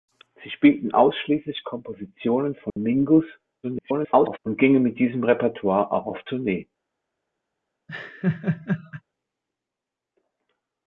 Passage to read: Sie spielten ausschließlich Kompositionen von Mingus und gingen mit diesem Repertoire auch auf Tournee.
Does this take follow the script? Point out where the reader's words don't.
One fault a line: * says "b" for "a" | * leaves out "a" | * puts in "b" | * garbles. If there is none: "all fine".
* garbles